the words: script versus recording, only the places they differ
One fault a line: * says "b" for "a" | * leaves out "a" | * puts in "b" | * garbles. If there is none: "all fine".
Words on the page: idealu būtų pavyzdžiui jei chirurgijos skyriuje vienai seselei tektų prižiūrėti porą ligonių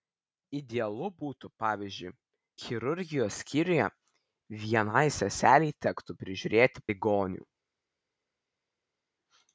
* leaves out "jei"
* leaves out "porą"